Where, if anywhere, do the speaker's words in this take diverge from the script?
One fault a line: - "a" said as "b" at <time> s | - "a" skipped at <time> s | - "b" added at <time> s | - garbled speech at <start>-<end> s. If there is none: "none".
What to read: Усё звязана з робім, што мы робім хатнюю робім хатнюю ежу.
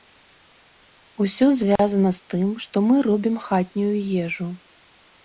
- "робім" said as "тым" at 2.4 s
- "робім хатнюю" skipped at 3.9 s